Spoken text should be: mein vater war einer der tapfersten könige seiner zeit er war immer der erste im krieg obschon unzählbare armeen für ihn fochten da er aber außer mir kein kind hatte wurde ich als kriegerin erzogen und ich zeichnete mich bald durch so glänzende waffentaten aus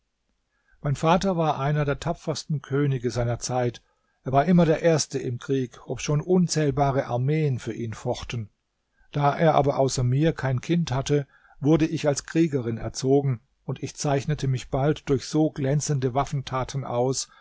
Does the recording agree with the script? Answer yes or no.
yes